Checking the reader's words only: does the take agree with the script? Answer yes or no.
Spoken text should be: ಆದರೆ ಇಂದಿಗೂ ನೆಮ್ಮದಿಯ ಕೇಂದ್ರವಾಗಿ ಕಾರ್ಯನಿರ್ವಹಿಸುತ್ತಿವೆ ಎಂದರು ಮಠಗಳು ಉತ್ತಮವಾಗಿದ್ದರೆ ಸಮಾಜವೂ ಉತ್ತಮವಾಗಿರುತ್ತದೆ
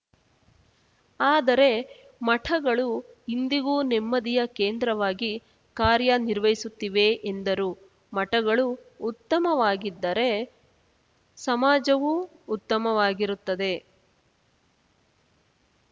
no